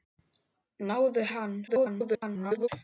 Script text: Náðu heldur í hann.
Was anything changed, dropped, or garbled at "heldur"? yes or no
yes